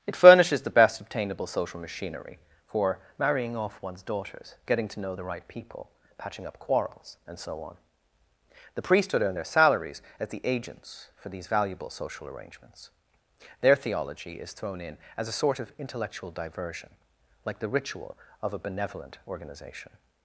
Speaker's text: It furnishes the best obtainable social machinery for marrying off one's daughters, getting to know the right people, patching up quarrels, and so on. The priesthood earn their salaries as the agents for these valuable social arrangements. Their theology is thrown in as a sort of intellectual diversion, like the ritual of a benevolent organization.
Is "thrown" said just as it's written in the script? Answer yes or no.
yes